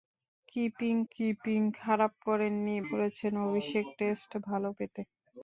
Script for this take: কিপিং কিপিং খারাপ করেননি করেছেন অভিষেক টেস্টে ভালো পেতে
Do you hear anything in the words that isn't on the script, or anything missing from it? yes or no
no